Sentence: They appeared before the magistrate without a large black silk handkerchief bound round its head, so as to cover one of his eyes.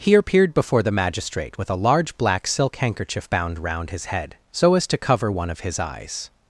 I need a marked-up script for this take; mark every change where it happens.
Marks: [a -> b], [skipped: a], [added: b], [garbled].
[They -> He] appeared before the magistrate [without -> with] a large black silk handkerchief bound round [its -> his] head, so as to cover one of his eyes.